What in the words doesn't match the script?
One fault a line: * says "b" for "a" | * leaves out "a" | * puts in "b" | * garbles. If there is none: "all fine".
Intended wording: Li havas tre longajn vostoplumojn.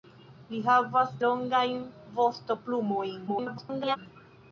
* leaves out "tre"
* garbles